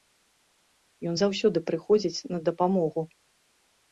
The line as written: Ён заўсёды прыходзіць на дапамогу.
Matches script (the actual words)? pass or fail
pass